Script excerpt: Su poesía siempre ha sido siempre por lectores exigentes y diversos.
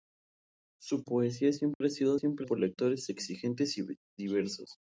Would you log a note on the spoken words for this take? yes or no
no